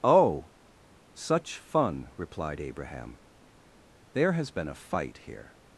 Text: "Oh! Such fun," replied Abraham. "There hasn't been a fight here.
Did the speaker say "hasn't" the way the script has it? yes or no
no